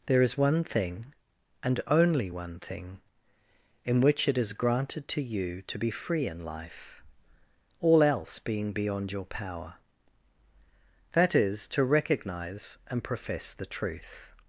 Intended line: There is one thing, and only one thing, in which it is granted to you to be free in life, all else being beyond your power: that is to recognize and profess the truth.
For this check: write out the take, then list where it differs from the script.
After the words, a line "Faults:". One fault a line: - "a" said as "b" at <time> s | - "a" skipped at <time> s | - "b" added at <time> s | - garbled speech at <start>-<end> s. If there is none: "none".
There is one thing, and only one thing, in which it is granted to you to be free in life, all else being beyond your power: that is to recognize and profess the truth.
Faults:
none